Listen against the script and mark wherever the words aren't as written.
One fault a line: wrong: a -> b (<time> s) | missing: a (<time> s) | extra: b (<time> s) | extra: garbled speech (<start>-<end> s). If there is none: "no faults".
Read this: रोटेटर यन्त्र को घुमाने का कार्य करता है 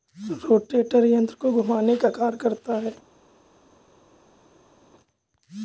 no faults